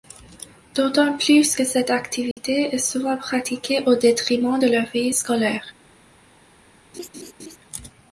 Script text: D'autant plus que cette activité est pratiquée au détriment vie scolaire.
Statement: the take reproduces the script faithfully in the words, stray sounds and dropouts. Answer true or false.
false